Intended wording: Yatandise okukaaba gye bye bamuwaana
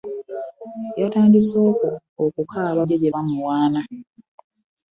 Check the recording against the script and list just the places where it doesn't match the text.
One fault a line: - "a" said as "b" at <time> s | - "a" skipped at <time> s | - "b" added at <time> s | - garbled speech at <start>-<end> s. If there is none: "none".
none